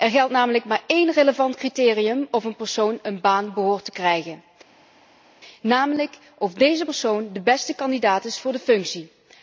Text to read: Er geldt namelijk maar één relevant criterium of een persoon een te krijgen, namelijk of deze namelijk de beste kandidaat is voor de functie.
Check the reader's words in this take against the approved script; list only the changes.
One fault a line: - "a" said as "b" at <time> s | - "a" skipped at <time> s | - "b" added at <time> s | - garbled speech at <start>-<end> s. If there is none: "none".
- "baan behoort" added at 3.2 s
- "namelijk" said as "persoon" at 6.8 s